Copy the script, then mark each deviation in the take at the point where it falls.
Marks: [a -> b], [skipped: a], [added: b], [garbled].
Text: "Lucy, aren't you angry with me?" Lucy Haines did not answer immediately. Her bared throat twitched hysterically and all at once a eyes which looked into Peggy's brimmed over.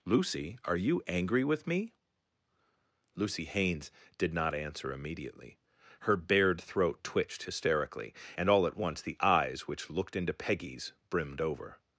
"Lucy, [aren't -> are] you angry with me?" Lucy Haines did not answer immediately. Her bared throat twitched hysterically and all at once [a -> the] eyes which looked into Peggy's brimmed over.